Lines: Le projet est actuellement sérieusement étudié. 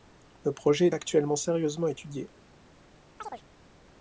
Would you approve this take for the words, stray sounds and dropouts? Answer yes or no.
no